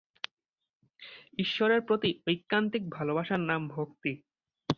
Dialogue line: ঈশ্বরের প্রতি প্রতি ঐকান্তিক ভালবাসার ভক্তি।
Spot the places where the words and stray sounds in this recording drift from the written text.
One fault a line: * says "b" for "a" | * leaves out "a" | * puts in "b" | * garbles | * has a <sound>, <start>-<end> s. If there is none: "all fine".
* leaves out "প্রতি"
* puts in "নাম"